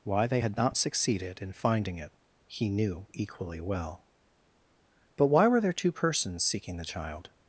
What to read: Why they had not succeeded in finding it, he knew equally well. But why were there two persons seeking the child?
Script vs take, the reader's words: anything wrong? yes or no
no